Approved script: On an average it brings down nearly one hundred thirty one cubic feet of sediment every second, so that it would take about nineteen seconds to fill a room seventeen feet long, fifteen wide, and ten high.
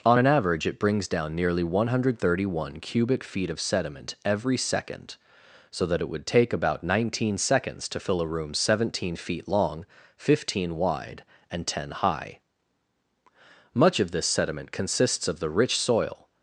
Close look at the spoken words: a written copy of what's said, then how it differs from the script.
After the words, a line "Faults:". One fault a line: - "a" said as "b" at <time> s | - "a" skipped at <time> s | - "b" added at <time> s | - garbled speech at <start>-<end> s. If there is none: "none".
On an average it brings down nearly one hundred thirty one cubic feet of sediment every second, so that it would take about nineteen seconds to fill a room seventeen feet long, fifteen wide, and ten high. Much of this sediment consists of the rich soil
Faults:
- "Much of this sediment consists of the rich soil" added at 13.7 s